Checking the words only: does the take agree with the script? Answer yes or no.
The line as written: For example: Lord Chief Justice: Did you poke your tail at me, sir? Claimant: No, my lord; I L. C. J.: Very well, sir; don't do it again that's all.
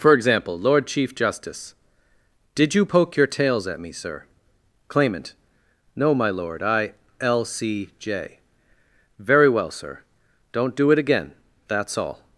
no